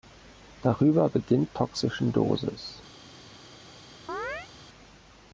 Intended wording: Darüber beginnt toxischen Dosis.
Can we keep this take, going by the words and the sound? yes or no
no